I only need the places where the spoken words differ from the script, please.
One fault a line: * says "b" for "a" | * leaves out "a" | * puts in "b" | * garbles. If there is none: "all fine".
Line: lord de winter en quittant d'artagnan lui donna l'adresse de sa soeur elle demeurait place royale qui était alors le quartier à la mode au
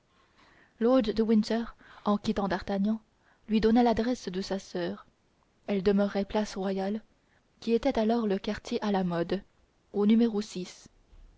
all fine